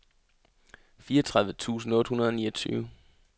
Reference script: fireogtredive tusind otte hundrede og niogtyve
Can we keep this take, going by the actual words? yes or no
yes